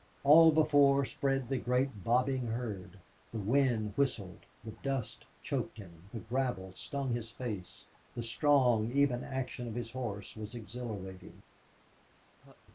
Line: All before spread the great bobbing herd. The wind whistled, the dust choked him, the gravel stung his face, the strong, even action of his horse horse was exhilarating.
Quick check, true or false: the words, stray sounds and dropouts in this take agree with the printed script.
false